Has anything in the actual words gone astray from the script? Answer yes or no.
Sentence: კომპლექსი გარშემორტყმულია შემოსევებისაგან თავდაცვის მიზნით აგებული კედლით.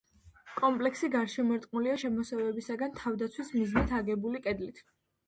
no